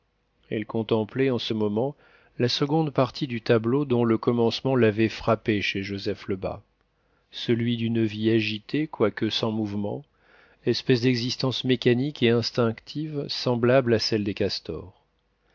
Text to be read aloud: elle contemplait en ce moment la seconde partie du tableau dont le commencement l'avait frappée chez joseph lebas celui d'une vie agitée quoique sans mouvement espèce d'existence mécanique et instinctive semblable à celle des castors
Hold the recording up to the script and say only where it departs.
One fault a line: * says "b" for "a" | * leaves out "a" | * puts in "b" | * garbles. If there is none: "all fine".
all fine